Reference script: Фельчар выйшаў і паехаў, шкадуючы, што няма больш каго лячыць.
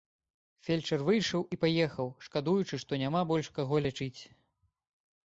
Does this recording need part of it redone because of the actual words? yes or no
no